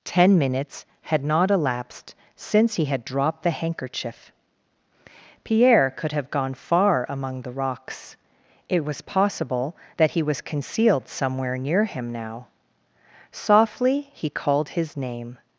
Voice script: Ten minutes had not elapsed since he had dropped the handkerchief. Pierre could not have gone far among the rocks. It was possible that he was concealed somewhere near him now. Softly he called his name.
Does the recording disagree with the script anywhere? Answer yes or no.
yes